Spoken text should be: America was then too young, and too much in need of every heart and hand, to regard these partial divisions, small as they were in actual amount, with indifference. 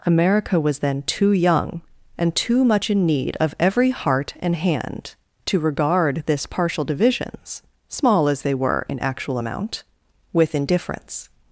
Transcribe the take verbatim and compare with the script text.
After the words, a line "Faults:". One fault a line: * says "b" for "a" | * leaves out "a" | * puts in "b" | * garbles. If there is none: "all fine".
America was then too young, and too much in need of every heart and hand, to regard this partial divisions, small as they were in actual amount, with indifference.
Faults:
* says "this" for "these"